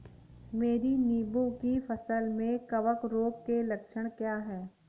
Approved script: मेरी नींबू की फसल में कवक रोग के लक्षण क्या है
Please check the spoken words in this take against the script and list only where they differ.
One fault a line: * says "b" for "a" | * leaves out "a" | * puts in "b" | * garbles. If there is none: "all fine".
all fine